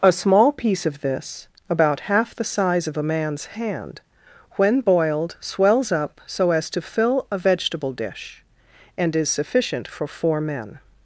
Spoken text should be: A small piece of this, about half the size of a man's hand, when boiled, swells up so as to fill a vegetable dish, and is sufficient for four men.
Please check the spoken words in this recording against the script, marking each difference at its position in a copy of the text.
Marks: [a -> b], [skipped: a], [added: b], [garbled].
A small piece of this, about half the size of a man's hand, when boiled, swells up so as to fill a vegetable dish, and is sufficient for four men.